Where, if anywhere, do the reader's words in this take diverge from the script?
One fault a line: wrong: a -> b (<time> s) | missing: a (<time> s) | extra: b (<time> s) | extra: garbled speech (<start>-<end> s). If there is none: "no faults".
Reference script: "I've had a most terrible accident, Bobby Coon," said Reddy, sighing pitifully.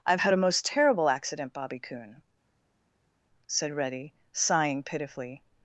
no faults